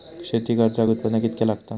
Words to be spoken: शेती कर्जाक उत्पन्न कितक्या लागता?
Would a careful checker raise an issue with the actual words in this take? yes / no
no